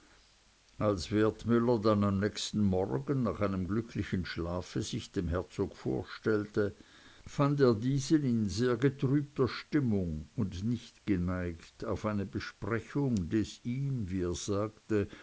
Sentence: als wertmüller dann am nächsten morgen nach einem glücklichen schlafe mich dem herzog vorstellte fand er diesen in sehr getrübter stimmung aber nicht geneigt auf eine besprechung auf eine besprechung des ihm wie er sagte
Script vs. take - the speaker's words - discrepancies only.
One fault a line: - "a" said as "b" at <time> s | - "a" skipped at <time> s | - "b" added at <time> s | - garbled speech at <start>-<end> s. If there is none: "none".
- "mich" said as "sich" at 4.8 s
- "aber" said as "und" at 10.4 s
- "auf eine besprechung" skipped at 13.3 s